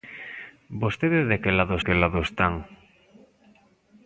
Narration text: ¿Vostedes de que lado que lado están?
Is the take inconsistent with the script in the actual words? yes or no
no